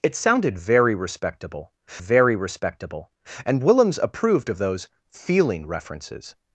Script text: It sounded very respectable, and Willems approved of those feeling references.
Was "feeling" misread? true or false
false